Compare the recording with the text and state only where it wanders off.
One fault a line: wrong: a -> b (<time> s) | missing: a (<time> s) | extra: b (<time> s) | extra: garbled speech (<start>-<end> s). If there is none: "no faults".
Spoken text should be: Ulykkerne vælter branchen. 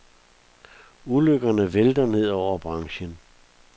extra: ned over (2.1 s)